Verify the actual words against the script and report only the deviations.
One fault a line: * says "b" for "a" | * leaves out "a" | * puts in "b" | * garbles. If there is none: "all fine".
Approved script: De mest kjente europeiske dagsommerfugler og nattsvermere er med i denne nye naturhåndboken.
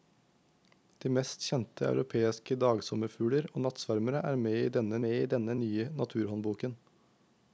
* puts in "med i denne"